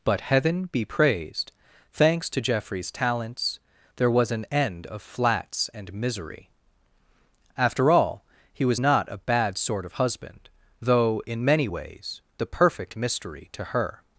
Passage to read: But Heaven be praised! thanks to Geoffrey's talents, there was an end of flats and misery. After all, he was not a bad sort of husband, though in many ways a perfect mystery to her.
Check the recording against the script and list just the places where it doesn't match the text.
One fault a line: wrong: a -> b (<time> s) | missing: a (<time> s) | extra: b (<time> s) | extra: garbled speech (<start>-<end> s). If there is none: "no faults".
wrong: a -> the (12.4 s)